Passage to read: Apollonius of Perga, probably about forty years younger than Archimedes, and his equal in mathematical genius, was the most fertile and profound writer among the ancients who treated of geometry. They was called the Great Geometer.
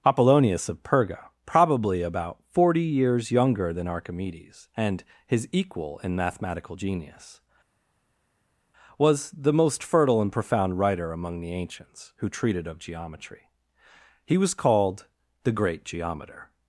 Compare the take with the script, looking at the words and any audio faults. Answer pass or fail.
fail